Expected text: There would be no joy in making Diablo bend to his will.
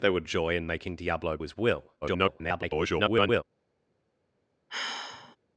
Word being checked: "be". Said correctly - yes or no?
no